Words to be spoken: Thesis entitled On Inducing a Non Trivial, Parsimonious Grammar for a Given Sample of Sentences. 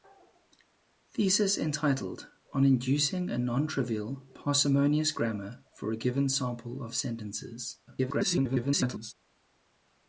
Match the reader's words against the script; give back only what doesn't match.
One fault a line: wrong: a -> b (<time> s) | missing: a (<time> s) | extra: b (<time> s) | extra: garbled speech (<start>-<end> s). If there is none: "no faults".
extra: garbled speech (7.9-9.1 s)